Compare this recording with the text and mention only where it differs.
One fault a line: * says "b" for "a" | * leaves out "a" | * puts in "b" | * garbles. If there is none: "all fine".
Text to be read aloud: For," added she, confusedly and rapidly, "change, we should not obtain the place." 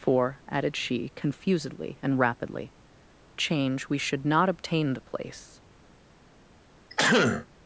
all fine